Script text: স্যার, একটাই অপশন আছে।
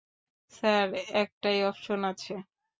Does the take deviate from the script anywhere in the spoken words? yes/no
no